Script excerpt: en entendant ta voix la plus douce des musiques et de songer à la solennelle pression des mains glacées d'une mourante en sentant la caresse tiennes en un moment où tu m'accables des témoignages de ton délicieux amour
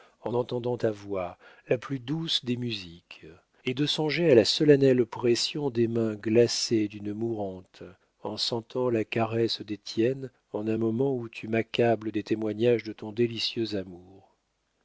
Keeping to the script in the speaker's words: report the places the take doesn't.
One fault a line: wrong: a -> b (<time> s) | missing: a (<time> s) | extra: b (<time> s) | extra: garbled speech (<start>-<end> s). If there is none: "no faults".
extra: des (9.6 s)